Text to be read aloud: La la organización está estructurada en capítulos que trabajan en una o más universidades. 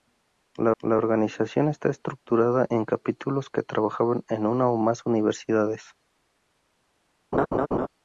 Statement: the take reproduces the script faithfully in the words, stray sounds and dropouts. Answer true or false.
false